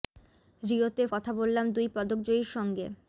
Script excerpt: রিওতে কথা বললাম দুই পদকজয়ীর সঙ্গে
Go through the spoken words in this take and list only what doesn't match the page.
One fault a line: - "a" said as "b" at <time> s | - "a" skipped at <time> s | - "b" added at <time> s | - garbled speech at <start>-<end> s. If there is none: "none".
none